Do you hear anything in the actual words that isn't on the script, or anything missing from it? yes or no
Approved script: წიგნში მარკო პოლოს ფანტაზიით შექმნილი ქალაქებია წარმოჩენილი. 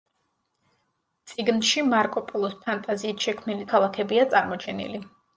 no